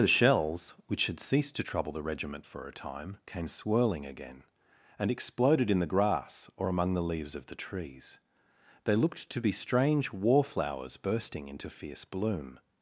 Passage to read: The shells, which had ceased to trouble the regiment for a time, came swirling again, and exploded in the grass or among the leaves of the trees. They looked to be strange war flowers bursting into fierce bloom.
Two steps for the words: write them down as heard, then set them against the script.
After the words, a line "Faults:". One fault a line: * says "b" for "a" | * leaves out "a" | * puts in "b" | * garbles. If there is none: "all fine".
The shells, which had ceased to trouble the regiment for a time, came swirling again, and exploded in the grass or among the leaves of the trees. They looked to be strange war flowers bursting into fierce bloom.
Faults:
all fine